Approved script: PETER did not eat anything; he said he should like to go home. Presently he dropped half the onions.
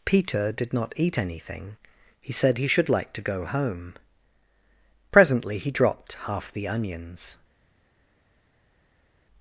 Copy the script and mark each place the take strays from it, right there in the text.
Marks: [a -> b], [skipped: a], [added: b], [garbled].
PETER did not eat anything; he said he should like to go home. Presently he dropped half the onions.